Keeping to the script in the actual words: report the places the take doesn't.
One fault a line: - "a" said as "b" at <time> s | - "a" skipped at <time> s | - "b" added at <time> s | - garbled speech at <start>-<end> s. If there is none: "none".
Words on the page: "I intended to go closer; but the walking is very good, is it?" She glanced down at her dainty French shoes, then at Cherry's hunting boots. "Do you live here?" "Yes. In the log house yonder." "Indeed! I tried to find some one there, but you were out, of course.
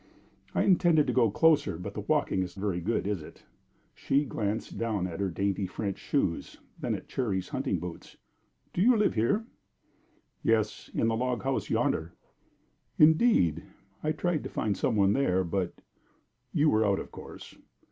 none